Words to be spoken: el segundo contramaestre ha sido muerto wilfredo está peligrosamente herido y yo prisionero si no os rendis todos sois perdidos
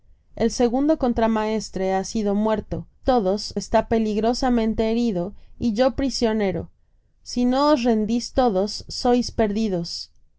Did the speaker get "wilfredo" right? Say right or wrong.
wrong